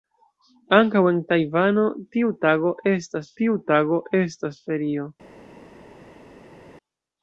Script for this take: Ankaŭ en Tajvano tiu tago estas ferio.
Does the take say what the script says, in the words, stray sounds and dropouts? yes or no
no